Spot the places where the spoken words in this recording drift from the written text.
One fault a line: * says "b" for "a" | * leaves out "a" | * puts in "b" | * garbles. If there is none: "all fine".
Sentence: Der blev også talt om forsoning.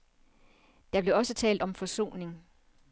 all fine